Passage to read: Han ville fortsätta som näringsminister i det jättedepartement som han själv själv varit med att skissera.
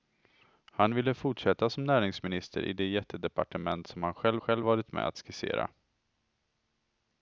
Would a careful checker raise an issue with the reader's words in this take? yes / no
no